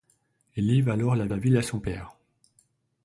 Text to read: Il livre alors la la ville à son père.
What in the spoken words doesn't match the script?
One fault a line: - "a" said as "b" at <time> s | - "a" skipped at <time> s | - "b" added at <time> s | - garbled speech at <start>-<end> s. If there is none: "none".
none